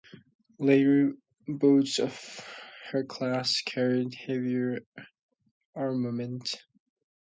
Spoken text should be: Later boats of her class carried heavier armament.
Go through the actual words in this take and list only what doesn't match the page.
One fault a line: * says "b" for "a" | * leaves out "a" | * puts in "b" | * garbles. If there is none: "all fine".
all fine